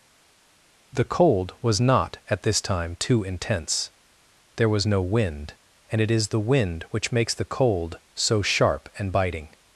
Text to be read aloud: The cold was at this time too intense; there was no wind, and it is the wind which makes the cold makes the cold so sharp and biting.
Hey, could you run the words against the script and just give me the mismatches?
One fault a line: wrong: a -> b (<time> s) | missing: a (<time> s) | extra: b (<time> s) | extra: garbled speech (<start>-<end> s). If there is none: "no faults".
extra: not (1.8 s)
missing: makes the cold (8.0 s)